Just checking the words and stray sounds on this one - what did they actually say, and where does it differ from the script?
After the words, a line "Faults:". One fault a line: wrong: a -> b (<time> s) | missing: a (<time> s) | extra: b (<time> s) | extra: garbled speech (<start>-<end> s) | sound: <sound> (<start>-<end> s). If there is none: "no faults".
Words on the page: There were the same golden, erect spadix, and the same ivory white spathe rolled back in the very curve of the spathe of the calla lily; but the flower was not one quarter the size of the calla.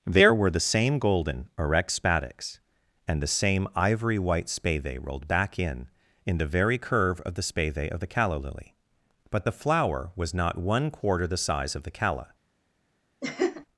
There were the same golden, erect spadix, and the same ivory white spathe rolled back in in the very curve of the spathe of the calla lily; but the flower was not one quarter the size of the calla.
Faults:
extra: in (6.2 s)
sound: laugh (13.2-13.7 s)